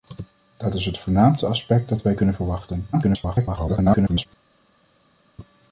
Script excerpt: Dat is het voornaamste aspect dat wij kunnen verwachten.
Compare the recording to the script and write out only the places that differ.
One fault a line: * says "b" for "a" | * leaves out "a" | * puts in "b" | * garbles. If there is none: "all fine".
* garbles